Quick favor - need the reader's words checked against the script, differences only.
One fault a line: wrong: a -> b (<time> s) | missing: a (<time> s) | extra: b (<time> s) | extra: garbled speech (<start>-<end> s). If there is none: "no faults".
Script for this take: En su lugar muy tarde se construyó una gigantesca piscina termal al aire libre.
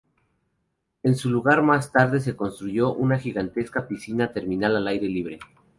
wrong: muy -> más (1.6 s)